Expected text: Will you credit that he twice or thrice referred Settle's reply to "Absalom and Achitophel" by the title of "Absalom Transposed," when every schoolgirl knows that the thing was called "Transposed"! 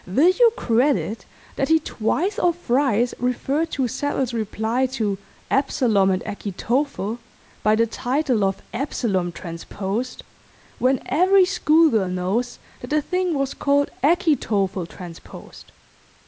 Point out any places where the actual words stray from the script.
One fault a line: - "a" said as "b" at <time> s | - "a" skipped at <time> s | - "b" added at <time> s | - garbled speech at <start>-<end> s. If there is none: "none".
- "to" added at 3.7 s
- "Achitophel" added at 14.0 s